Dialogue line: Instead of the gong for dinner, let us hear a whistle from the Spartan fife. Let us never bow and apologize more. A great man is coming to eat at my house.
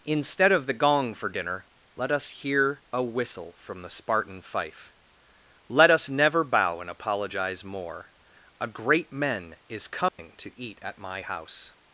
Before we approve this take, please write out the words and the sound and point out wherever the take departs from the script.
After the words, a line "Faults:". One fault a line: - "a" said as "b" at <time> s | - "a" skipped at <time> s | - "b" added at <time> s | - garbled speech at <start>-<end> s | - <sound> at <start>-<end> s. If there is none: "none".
Instead of the gong for dinner, let us hear a whistle from the Spartan fife. Let us never bow and apologize more. A great men is coming to eat at my house.
Faults:
- "man" said as "men" at 9.1 s
- dropout at 10.1-10.2 s